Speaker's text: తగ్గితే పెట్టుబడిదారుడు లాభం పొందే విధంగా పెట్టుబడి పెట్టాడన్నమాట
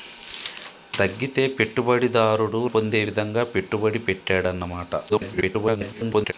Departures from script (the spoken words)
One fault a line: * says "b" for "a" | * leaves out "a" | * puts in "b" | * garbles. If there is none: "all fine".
* leaves out "లాభం"
* garbles